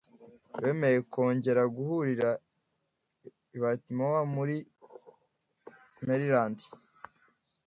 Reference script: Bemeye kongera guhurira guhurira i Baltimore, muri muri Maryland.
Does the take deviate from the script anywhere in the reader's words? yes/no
yes